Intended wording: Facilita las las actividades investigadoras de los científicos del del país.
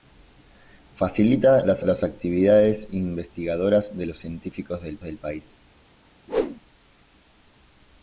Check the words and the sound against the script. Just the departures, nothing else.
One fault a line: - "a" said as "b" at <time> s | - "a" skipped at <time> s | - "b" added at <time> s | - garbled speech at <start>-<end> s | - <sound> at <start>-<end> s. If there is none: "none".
- whoosh at 6.3-6.6 s